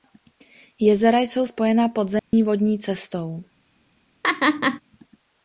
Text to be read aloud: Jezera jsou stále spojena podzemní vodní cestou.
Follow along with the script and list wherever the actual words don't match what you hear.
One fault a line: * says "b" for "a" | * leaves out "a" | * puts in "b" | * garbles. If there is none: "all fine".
* leaves out "stále"